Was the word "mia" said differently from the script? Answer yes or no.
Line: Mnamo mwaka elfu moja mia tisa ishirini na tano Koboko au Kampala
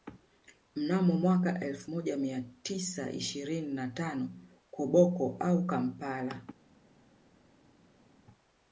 no